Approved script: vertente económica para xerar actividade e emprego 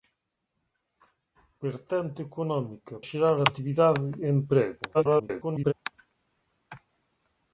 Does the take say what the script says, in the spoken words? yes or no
no